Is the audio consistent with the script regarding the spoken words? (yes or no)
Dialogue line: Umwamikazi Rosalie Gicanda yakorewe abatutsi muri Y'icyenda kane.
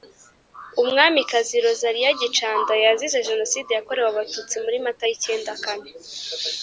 no